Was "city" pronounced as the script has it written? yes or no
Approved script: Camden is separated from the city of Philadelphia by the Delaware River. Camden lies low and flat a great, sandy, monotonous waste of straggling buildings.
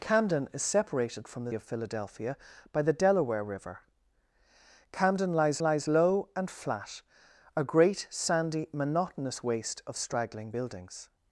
no